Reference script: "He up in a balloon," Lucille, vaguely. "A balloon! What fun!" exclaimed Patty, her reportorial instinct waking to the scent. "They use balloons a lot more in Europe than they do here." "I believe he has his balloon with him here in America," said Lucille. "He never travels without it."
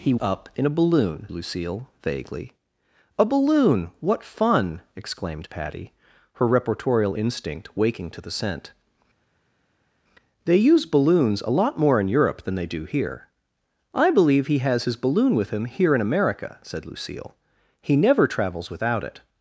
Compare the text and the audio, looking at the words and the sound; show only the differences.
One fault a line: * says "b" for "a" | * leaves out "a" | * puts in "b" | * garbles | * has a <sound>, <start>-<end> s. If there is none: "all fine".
all fine